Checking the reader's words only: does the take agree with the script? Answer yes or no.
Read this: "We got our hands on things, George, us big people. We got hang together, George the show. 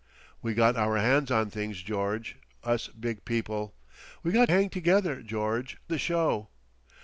yes